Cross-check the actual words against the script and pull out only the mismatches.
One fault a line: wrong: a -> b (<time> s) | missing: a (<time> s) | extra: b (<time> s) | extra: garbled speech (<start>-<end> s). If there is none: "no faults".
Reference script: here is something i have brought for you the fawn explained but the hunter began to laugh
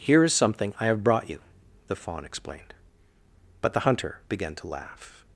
missing: for (1.3 s)